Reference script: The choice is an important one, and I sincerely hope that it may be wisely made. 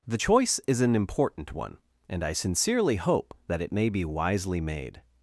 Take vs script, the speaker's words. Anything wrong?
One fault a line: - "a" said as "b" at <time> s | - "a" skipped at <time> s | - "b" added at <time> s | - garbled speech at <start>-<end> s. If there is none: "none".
none